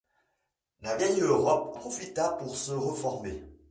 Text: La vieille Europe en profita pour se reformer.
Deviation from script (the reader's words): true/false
true